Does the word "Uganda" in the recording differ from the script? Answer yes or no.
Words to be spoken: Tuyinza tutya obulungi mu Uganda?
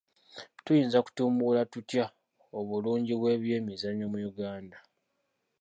no